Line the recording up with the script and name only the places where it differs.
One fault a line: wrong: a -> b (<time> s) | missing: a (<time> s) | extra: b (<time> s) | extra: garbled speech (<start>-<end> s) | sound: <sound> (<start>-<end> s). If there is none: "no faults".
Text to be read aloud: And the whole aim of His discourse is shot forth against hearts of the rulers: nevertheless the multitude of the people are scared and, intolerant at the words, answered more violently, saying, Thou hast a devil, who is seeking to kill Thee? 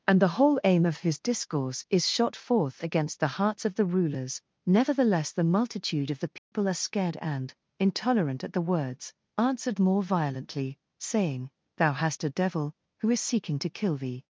extra: the (3.2 s)
sound: dropout (6.4-6.5 s)